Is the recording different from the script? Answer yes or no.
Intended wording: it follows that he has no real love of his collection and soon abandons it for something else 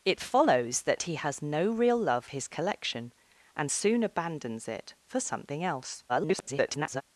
yes